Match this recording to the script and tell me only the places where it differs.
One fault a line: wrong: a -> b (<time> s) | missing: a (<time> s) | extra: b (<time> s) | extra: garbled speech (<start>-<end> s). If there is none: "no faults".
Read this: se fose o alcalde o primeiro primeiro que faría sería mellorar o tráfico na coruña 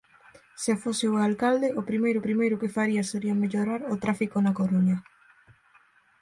no faults